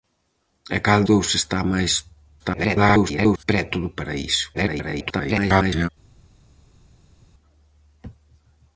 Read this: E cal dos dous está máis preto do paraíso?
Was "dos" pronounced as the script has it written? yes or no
no